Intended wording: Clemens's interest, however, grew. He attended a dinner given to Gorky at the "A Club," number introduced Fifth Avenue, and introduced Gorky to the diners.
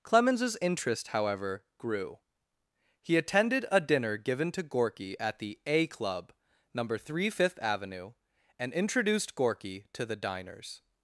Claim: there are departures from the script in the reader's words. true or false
true